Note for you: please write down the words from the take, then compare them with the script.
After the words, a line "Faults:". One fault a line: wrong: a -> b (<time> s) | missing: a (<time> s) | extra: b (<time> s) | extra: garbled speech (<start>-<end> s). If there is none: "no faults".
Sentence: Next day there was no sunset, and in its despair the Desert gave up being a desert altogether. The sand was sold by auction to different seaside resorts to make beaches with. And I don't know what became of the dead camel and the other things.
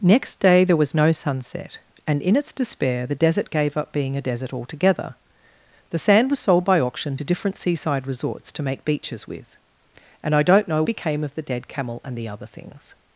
Next day there was no sunset, and in its despair the Desert gave up being a desert altogether. The sand was sold by auction to different seaside resorts to make beaches with. And I don't know became of the dead camel and the other things.
Faults:
missing: what (10.8 s)